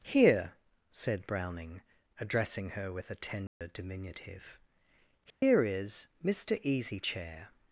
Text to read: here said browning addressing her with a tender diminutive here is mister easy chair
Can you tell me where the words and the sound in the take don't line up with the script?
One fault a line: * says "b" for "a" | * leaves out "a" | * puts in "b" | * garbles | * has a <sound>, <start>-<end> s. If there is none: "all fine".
* has a dropout, 3.5-3.6 s
* has a dropout, 5.3-5.4 s